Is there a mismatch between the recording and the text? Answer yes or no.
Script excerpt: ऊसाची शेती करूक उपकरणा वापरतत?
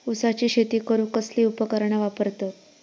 yes